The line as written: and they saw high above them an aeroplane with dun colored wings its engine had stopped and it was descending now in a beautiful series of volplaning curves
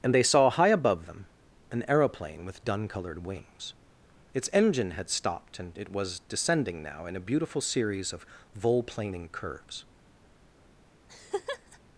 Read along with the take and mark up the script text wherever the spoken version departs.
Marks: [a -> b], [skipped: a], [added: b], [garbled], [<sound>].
and they saw high above them an aeroplane with dun colored wings its engine had stopped and it was descending now in a beautiful series of volplaning curves [laugh]